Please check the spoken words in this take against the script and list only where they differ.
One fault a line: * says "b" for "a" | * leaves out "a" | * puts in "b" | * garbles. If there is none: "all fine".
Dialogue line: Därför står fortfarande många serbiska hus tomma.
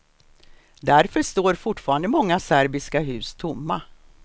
all fine